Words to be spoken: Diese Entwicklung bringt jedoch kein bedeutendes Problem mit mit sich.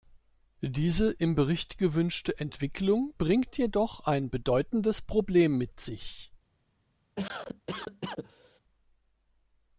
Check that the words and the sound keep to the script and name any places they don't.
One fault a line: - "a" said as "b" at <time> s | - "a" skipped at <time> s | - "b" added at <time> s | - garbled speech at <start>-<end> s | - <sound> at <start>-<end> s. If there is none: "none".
- "im Bericht gewünschte" added at 1.1 s
- "kein" said as "ein" at 4.0 s
- "mit" skipped at 5.8 s
- cough at 7.2-8.6 s